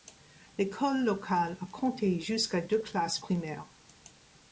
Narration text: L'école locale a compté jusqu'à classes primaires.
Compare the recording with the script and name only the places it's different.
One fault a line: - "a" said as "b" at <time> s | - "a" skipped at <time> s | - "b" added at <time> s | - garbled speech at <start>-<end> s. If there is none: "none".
- "deux" added at 2.6 s